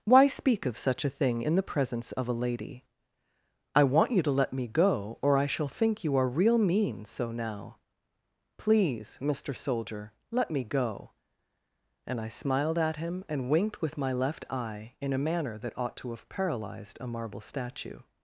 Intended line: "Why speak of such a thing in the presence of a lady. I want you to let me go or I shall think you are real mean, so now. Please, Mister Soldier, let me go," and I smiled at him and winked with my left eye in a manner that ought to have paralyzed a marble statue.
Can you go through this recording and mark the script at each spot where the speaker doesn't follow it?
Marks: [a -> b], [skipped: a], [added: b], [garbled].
"Why speak of such a thing in the presence of a lady. I want you to let me go or I shall think you are real mean, so now. Please, Mister Soldier, let me go," and I smiled at him and winked with my left eye in a manner that ought to have paralyzed a marble statue.